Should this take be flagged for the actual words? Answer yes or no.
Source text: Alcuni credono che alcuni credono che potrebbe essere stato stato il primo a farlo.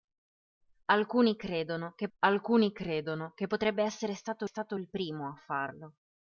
no